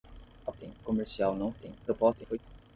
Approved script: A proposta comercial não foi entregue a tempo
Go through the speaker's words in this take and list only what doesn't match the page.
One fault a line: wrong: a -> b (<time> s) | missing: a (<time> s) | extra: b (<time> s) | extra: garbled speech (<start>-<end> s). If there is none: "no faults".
wrong: proposta -> tempo (0.5 s)
missing: foi entregue (1.5 s)
extra: garbled speech (1.9-2.4 s)